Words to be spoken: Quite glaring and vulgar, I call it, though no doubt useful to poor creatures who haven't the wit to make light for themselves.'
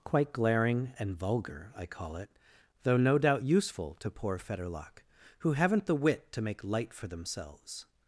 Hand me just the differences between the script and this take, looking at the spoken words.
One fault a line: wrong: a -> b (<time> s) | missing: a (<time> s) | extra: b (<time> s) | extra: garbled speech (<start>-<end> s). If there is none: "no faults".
wrong: creatures -> fetterlock (4.4 s)